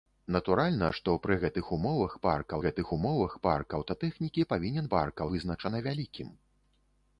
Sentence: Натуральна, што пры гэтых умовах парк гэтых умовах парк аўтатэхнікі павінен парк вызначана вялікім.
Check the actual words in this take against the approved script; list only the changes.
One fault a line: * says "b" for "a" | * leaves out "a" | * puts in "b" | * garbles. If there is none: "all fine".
all fine